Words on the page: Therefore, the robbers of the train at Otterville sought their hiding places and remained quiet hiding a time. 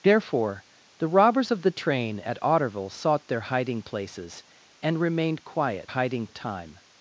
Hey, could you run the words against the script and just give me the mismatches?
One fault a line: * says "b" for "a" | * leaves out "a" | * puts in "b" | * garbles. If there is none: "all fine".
all fine